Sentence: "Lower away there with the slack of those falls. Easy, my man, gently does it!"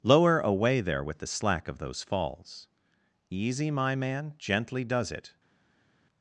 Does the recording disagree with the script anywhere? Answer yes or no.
no